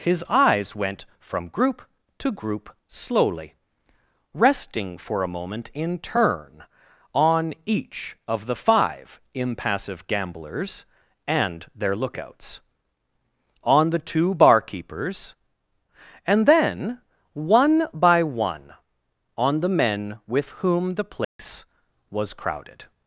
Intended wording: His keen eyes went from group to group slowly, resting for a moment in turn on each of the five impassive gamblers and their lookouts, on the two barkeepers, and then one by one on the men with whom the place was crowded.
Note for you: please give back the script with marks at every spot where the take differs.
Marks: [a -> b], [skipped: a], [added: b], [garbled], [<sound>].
His [skipped: keen] eyes went from group to group slowly, resting for a moment in turn on each of the five impassive gamblers and their lookouts, on the two barkeepers, and then one by one on the men with whom the place [dropout] was crowded.